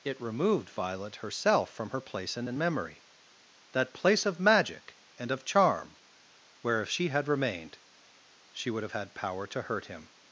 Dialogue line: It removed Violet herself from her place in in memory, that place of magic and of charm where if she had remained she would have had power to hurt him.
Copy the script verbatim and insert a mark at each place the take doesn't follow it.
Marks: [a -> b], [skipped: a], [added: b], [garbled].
It removed Violet herself from her place in in memory, that place of magic and of charm where if she had remained she would have had power to hurt him.